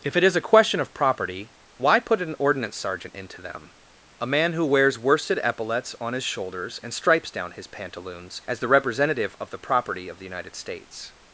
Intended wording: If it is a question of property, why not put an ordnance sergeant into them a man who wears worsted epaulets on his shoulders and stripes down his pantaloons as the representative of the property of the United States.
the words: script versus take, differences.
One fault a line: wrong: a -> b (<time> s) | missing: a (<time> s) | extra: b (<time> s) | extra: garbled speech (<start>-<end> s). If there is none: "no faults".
missing: not (2.0 s)